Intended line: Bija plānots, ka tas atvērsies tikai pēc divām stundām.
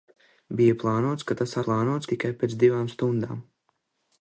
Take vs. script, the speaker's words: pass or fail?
fail